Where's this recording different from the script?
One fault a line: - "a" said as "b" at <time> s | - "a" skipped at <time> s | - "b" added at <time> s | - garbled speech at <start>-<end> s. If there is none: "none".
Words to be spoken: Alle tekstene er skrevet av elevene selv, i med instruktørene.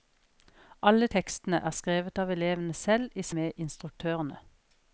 none